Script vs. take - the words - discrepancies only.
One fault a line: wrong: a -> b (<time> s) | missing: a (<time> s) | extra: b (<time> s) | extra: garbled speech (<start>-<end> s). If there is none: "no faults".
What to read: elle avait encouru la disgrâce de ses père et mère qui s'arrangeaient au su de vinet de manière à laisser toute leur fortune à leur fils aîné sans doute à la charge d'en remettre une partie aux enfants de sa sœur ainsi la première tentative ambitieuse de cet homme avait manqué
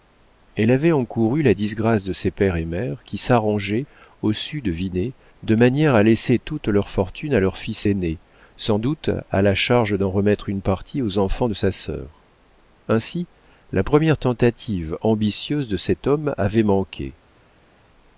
no faults